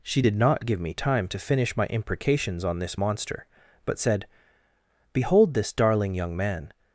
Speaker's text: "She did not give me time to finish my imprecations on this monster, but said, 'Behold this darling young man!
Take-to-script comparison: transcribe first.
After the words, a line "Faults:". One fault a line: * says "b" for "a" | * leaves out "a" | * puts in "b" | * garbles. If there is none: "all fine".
"She did not give me time to finish my imprecations on this monster, but said, 'Behold this darling young man!
Faults:
all fine